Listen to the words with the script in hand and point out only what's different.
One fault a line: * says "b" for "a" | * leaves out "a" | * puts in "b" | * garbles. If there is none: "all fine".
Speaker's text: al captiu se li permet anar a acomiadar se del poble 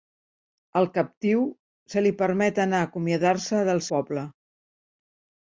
all fine